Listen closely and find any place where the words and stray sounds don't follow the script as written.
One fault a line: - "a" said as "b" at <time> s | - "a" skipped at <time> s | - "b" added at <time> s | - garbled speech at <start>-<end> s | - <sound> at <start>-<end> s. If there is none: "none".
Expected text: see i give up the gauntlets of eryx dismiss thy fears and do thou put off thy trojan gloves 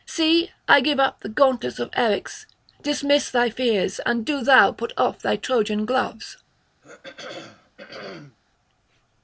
- throat clearing at 6.8-8.4 s